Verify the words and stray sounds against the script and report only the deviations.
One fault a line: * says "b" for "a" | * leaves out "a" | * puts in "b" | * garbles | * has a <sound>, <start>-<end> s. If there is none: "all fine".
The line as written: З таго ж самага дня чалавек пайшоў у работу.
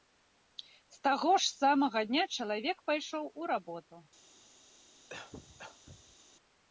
* has a cough, 5.1-6.2 s